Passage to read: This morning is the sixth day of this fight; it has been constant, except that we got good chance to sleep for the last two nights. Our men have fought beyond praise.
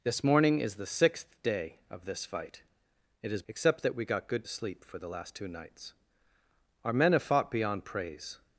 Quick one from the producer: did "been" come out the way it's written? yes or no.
no